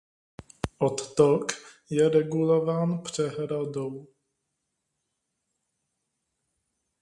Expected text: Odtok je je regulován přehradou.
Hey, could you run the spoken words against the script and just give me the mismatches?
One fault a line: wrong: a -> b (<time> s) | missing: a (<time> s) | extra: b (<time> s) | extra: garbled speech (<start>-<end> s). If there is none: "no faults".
missing: je (2.1 s)